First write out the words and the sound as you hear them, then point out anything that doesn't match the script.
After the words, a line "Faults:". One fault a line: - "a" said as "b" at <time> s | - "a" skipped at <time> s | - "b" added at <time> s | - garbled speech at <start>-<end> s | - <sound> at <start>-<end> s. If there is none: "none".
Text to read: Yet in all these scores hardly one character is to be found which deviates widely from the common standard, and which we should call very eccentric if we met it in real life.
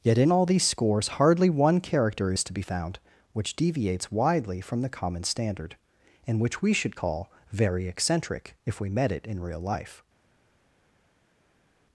Yet in all these scores hardly one character is to be found which deviates widely from the common standard, and which we should call very eccentric if we met it in real life.
Faults:
none